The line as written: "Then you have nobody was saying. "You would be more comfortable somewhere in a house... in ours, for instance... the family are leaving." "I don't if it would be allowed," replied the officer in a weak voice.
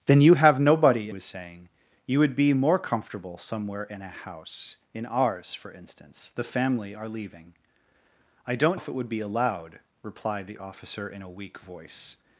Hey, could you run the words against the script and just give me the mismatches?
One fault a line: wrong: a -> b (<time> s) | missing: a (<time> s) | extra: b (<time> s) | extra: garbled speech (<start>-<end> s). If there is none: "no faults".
no faults